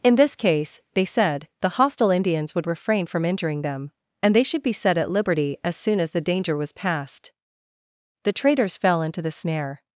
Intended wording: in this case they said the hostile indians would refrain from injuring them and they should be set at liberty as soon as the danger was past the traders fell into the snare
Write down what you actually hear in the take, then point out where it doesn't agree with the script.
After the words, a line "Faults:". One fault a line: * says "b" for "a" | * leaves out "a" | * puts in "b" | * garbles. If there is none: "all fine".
in this case they said the hostile indians would refrain from injuring them and they should be set at liberty as soon as the danger was past the traders fell into the snare
Faults:
all fine